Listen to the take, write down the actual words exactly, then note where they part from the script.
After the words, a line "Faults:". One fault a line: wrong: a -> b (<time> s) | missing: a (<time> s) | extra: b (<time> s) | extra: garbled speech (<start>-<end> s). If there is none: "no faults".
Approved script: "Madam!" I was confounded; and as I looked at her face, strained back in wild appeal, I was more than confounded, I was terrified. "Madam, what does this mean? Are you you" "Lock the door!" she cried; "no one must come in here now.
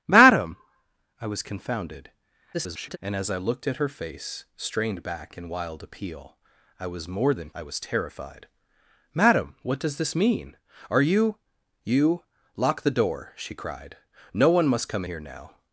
"Madam!" I was confounded; [garbled] and as I looked at her face, strained back in wild appeal, I was more than I was terrified. "Madam, what does this mean? Are you you" "Lock the door!" she cried; "no one must come here now.
Faults:
extra: garbled speech (2.5-3.0 s)
missing: confounded (7.5 s)
missing: in (15.1 s)